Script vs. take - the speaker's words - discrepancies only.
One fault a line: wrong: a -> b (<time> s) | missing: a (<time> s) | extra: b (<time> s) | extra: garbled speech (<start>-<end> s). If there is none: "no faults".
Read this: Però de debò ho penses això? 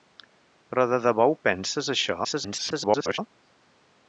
extra: garbled speech (2.2-3.2 s)